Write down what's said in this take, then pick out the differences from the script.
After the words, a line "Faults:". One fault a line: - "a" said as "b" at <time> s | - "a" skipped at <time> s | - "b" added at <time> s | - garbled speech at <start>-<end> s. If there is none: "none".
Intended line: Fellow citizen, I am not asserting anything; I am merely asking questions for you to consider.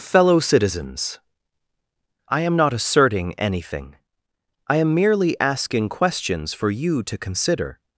Fellow citizens, I am not asserting anything; I am merely asking questions for you to consider.
Faults:
- "citizen" said as "citizens" at 0.4 s